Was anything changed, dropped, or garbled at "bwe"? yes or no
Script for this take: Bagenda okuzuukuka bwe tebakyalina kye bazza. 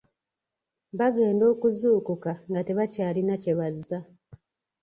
yes